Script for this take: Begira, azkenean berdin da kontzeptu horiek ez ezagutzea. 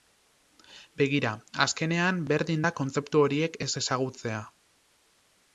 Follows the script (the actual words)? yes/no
yes